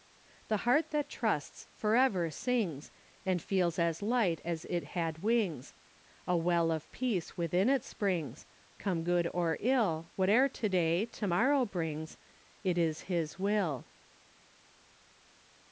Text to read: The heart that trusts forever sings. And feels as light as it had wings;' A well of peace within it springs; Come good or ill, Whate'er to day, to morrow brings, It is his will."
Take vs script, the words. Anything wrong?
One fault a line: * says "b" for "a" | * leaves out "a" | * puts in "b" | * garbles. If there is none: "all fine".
all fine